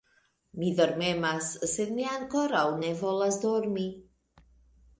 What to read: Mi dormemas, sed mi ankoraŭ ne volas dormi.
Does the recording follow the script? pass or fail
pass